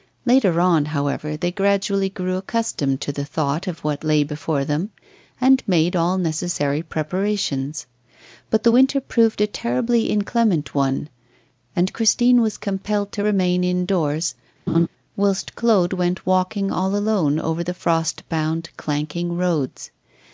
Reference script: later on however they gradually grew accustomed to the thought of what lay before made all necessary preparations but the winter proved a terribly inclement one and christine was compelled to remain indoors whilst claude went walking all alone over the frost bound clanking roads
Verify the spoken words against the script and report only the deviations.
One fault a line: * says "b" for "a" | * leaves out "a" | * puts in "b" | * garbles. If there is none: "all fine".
* puts in "them and"